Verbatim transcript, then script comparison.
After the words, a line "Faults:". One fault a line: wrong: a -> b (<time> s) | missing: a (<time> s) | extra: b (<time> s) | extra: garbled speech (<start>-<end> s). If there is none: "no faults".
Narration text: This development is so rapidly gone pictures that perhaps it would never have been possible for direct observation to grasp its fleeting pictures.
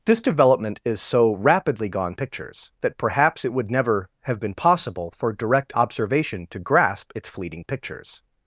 This development is so rapidly gone pictures that perhaps it would never have been possible for direct observation to grasp its fleeting pictures.
Faults:
no faults